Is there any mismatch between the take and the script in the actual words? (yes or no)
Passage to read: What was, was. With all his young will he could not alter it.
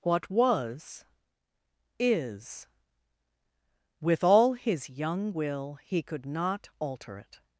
yes